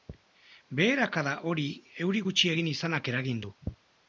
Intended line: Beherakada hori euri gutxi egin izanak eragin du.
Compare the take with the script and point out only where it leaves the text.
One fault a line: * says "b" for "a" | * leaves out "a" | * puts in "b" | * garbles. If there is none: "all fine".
all fine